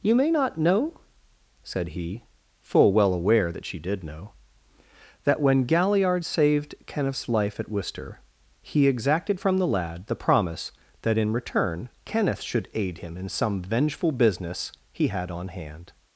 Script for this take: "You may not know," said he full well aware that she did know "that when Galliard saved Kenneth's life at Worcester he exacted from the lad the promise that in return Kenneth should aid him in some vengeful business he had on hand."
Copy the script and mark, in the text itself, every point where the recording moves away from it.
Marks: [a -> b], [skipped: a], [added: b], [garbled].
"You may not know," said he full well aware that she did know "that when Galliard saved Kenneth's life at Worcester he exacted from the lad the promise that in return Kenneth should aid him in some vengeful business he had on hand."